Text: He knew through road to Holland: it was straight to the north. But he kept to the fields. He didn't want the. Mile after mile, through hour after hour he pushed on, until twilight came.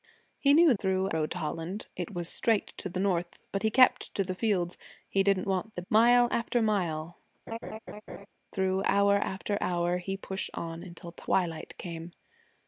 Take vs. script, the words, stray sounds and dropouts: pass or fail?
fail